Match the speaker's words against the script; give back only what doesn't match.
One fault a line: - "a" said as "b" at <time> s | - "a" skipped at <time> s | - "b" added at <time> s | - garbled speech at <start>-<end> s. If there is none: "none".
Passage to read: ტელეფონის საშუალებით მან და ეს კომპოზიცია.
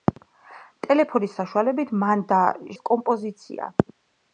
none